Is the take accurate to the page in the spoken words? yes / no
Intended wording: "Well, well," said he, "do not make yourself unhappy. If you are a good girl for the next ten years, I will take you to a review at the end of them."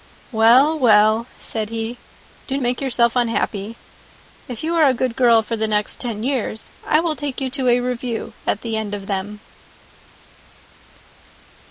no